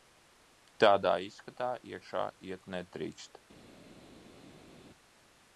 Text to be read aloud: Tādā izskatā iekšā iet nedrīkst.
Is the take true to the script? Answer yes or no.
yes